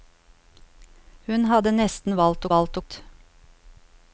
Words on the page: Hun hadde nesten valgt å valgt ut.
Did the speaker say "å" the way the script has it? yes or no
yes